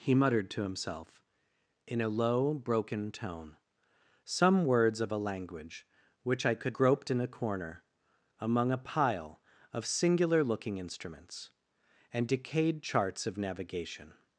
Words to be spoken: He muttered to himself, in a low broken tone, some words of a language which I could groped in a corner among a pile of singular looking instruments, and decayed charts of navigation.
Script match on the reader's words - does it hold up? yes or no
yes